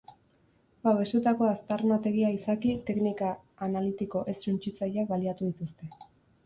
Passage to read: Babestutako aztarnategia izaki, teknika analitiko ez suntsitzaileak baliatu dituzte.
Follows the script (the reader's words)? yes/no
yes